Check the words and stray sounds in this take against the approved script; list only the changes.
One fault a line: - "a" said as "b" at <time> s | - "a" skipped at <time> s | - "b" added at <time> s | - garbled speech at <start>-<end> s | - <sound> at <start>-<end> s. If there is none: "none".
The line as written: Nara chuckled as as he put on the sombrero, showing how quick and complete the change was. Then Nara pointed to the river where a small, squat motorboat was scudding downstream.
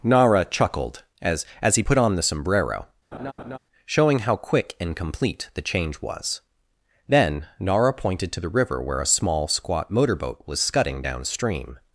- laugh at 3.1-3.6 s